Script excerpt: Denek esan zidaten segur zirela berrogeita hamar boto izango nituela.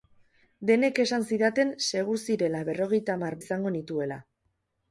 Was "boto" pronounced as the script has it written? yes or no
no